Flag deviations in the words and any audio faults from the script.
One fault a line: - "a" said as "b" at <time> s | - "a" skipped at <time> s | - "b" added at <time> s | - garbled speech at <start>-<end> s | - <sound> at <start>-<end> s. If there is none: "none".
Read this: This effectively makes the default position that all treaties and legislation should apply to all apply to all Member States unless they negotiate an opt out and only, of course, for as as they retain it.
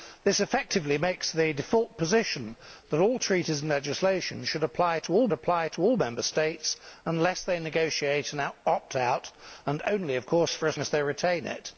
none